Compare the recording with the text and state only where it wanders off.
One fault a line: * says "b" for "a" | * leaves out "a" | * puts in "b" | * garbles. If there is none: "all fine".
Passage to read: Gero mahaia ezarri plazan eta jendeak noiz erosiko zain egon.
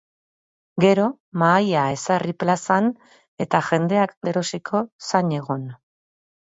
* leaves out "noiz"